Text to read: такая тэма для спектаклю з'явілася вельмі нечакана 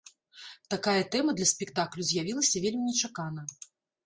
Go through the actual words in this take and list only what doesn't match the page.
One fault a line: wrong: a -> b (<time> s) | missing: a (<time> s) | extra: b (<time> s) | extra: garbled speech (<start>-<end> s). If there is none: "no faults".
no faults